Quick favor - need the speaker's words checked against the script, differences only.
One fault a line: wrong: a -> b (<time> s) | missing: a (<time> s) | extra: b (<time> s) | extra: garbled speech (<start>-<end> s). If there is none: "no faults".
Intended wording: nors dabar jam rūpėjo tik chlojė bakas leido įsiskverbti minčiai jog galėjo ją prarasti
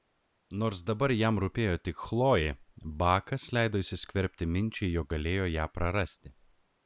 no faults